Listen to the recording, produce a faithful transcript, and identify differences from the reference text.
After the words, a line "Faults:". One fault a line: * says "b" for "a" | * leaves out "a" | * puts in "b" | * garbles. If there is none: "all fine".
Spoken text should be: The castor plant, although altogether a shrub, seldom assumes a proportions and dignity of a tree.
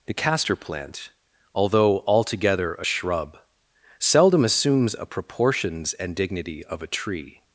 The castor plant, although altogether a shrub, seldom assumes a proportions and dignity of a tree.
Faults:
all fine